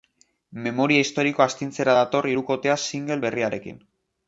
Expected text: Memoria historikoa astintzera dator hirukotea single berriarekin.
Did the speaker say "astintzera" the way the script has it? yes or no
yes